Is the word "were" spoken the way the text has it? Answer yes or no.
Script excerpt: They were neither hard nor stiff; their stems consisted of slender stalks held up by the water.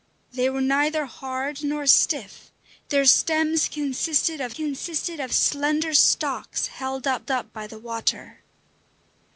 yes